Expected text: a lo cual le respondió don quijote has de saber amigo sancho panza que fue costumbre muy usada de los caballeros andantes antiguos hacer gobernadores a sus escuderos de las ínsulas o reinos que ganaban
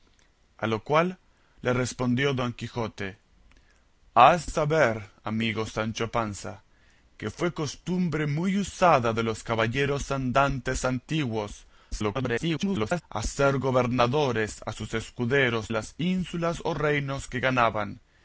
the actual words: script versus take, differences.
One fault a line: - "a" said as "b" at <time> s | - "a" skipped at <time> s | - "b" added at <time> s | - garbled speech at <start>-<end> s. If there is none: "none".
- "de" skipped at 4.5 s
- garbled speech at 11.9-13.0 s
- "de" skipped at 15.7 s